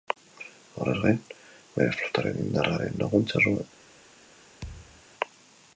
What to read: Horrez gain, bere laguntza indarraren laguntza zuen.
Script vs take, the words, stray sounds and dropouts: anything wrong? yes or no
yes